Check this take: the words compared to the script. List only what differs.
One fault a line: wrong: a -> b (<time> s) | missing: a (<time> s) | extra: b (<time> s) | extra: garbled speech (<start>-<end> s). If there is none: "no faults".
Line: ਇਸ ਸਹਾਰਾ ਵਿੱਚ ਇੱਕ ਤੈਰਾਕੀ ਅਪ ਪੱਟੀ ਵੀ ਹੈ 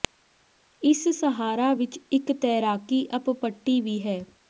no faults